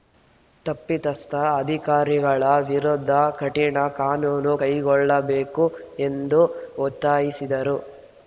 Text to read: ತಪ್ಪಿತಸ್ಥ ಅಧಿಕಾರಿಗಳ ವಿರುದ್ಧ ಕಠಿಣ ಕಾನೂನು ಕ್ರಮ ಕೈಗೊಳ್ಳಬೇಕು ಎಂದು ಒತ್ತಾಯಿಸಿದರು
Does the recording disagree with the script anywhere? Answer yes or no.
yes